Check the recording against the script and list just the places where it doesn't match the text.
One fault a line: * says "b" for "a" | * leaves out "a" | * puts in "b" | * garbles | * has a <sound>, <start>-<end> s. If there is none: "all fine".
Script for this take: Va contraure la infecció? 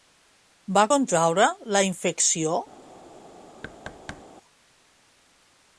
* has a thud, 3.6-4.2 s